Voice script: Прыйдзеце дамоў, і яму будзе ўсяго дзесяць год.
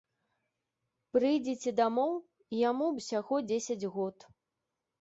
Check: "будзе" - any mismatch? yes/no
yes